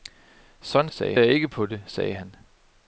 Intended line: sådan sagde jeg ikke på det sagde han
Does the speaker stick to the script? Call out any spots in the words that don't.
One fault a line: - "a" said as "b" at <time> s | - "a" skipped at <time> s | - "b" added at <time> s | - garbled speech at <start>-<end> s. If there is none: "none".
none